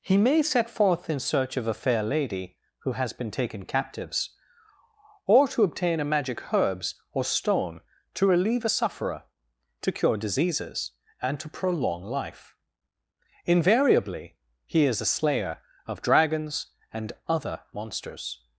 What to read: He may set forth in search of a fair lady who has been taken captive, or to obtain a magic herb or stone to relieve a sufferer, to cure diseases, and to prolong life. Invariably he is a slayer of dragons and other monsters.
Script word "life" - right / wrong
right